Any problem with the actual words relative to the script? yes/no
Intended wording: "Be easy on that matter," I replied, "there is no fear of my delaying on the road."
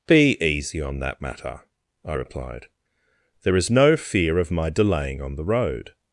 no